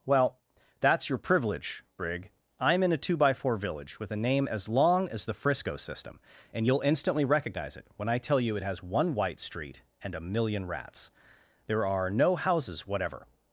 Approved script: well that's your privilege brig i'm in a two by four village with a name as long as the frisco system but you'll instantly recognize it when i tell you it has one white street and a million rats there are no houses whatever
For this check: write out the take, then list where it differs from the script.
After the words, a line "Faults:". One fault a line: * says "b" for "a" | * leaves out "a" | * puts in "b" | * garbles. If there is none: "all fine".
well that's your privilege brig i'm in a two by four village with a name as long as the frisco system and you'll instantly recognize it when i tell you it has one white street and a million rats there are no houses whatever
Faults:
* says "and" for "but"